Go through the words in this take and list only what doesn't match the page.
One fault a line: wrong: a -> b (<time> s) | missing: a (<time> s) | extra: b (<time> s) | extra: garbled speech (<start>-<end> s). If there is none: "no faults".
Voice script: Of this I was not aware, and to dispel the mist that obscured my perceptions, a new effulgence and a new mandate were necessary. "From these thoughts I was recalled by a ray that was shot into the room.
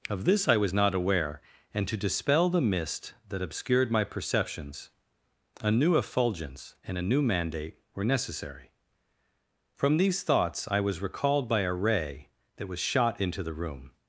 no faults